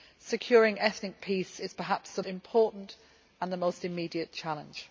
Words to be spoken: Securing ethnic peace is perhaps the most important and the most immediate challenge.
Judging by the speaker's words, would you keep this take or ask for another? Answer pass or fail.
fail